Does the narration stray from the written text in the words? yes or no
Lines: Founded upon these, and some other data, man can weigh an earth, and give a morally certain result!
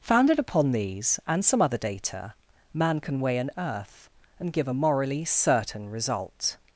no